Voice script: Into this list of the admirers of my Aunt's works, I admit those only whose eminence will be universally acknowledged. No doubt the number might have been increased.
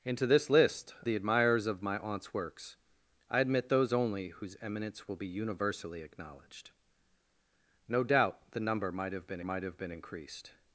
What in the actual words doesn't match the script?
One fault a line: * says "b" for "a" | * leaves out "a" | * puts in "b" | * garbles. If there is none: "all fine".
* leaves out "of"
* puts in "might have been"